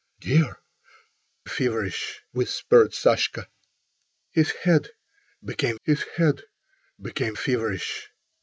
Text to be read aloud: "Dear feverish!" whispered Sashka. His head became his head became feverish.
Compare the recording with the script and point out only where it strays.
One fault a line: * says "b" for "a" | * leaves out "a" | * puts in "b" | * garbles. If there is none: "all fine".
all fine